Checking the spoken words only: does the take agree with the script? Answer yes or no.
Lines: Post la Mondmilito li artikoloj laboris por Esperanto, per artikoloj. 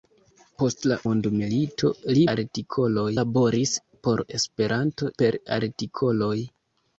yes